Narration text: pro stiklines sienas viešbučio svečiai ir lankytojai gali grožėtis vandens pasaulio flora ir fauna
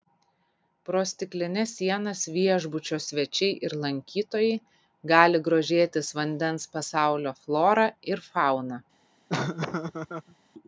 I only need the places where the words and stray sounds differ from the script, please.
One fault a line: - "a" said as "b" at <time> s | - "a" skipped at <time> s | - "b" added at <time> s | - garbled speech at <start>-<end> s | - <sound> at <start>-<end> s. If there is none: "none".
- laugh at 9.3-10.4 s